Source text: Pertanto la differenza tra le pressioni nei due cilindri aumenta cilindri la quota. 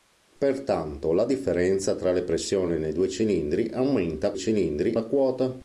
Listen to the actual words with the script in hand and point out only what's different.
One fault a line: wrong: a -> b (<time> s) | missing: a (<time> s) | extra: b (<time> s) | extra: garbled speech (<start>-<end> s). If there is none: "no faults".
no faults